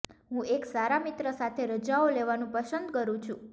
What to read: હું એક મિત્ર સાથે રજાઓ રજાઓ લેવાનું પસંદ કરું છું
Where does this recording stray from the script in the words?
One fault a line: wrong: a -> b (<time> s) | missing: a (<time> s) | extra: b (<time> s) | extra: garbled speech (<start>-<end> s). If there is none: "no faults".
extra: સારા (0.7 s)
missing: રજાઓ (2.1 s)